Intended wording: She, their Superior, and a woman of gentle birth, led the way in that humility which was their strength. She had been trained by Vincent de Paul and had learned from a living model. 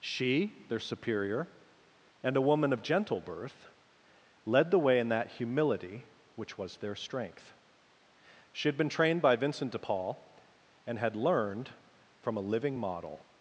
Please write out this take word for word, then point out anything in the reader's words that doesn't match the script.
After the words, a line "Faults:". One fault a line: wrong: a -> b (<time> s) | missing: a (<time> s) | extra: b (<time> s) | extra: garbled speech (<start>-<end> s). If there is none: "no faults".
She, their Superior, and a woman of gentle birth, led the way in that humility which was their strength. She had been trained by Vincent de Paul and had learned from a living model.
Faults:
no faults